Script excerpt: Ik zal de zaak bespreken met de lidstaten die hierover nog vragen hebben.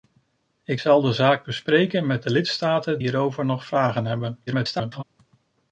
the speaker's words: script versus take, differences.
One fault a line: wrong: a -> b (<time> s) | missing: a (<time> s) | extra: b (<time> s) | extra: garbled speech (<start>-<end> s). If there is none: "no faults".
missing: die (3.0 s)
extra: garbled speech (4.5-5.0 s)